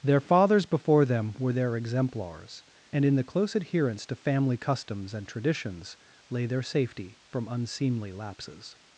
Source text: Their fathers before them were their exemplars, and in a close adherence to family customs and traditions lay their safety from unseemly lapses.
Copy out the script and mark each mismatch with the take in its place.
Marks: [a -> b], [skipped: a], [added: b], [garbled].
Their fathers before them were their exemplars, and in [a -> the] close adherence to family customs and traditions lay their safety from unseemly lapses.